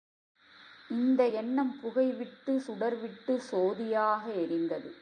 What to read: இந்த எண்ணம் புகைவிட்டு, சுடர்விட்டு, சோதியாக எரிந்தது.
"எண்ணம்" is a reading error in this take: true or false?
false